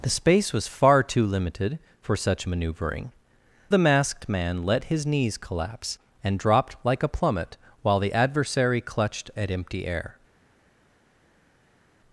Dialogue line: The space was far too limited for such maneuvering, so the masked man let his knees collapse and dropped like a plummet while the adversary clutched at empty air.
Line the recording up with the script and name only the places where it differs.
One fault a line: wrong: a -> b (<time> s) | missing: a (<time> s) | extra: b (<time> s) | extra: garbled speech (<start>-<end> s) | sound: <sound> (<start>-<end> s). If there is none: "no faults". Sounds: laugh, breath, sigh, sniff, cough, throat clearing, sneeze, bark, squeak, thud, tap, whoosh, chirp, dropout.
missing: so (3.1 s)